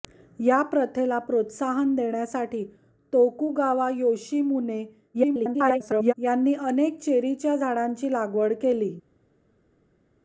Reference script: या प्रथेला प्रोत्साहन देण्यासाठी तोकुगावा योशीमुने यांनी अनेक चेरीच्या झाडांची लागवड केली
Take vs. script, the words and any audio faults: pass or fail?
fail